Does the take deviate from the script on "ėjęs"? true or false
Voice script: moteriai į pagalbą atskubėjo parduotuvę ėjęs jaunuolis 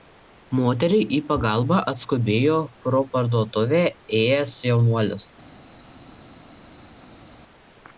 false